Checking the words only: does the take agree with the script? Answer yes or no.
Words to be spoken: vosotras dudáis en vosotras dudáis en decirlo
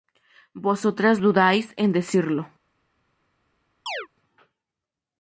no